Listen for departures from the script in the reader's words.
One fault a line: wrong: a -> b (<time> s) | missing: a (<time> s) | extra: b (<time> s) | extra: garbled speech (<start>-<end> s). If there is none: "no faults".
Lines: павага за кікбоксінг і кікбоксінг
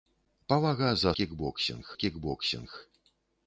no faults